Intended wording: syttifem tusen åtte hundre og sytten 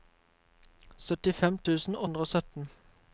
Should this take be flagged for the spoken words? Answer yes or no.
yes